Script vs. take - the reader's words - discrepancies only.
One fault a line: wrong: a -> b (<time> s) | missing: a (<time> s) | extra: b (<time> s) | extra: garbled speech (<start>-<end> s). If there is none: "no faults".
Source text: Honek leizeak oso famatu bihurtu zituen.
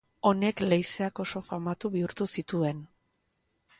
no faults